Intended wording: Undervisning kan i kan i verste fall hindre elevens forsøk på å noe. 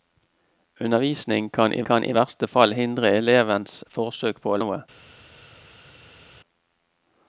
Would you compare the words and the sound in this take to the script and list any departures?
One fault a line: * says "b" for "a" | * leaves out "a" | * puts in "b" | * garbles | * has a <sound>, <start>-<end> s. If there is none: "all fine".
all fine